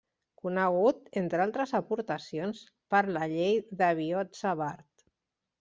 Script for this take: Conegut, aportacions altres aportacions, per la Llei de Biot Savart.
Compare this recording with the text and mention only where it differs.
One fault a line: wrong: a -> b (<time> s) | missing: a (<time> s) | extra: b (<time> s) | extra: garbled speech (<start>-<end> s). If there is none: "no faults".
wrong: aportacions -> entre (1.2 s)